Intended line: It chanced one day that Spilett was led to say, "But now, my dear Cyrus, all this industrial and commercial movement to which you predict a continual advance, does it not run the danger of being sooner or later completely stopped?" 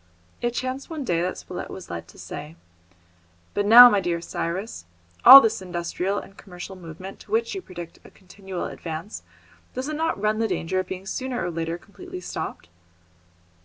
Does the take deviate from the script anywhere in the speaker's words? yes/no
no